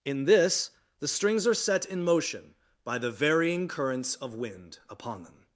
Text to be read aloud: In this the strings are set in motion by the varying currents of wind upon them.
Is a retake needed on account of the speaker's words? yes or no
no